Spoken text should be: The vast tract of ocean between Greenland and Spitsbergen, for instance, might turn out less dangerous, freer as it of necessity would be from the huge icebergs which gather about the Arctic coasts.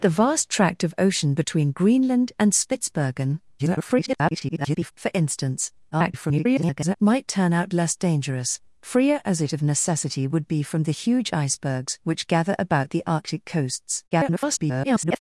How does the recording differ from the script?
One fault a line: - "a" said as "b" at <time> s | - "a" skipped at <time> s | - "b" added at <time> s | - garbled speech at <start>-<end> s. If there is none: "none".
- garbled speech at 3.6-4.9 s
- garbled speech at 5.9-7.0 s
- garbled speech at 14.1-15.2 s